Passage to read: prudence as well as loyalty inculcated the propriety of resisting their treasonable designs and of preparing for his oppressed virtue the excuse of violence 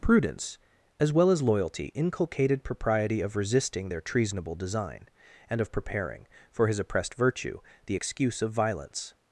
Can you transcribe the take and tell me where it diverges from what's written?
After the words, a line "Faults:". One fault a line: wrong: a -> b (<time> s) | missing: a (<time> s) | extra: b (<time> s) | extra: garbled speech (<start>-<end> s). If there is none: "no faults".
prudence as well as loyalty inculcated propriety of resisting their treasonable design and of preparing for his oppressed virtue the excuse of violence
Faults:
missing: the (2.6 s)
wrong: designs -> design (4.6 s)